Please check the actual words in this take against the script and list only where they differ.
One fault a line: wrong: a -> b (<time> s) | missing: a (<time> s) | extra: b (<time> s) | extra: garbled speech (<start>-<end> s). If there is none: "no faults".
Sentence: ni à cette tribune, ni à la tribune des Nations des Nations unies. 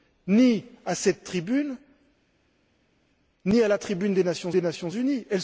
no faults